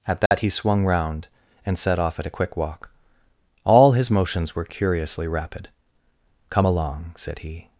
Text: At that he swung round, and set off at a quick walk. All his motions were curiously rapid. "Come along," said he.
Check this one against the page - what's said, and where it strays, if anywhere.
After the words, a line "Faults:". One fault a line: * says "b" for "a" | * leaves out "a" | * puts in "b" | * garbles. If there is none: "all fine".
At that he swung round, and set off at a quick walk. All his motions were curiously rapid. "Come along," said he.
Faults:
all fine